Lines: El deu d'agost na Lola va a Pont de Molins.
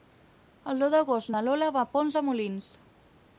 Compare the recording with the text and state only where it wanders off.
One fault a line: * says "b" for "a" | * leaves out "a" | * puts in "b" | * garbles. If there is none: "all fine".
all fine